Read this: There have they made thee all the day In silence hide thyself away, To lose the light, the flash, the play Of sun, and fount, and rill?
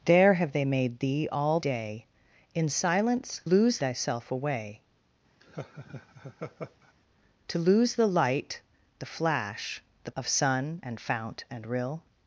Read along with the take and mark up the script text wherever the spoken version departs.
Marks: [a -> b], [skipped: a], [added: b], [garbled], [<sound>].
There have they made thee all [skipped: the] day In silence [hide -> lose] thyself away, [laugh] To lose the light, the flash, the [skipped: play] Of sun, and fount, and rill?